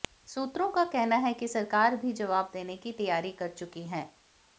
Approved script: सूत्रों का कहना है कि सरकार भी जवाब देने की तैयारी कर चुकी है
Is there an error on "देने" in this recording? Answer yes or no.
no